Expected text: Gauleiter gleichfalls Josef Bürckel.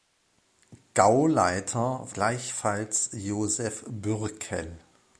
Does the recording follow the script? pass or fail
pass